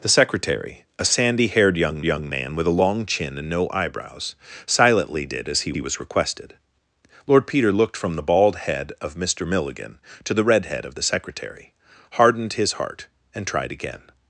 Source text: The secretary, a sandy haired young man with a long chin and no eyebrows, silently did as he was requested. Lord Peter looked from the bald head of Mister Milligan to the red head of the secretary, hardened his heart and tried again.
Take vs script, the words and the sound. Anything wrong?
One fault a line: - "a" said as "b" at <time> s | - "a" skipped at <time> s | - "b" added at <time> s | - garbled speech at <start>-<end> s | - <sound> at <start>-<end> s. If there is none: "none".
- "young" added at 2.0 s
- "he" added at 5.7 s